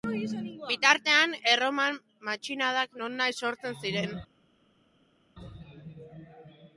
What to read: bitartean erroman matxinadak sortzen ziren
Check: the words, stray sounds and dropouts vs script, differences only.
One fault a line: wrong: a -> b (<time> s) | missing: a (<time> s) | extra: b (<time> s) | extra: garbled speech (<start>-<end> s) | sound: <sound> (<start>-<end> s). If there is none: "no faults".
extra: nonahi (3.0 s)